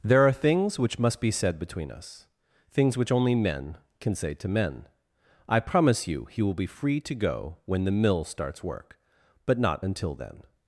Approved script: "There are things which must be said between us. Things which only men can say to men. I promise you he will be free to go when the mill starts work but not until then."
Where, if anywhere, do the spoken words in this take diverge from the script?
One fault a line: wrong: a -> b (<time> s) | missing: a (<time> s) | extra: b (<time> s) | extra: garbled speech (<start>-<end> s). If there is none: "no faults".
no faults